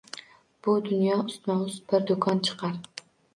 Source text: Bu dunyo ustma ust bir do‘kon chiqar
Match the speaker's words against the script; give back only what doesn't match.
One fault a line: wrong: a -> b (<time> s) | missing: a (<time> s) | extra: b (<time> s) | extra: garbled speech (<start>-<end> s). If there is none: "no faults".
no faults